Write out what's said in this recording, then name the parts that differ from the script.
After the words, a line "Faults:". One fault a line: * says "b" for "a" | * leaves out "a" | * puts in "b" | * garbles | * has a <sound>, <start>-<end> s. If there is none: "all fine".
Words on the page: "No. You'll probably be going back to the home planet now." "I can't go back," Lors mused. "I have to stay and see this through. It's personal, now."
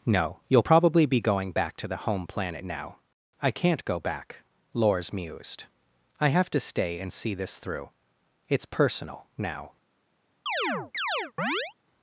"No. You'll probably be going back to the home planet now." "I can't go back," Lors mused. "I have to stay and see this through. It's personal, now."
Faults:
* has a chirp, 10.5-11.7 s